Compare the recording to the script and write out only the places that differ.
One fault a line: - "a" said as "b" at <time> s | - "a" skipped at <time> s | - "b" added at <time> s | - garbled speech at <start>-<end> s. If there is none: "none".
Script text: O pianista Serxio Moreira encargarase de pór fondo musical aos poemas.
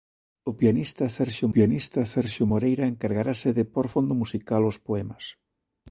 - "pianista Serxio" added at 1.5 s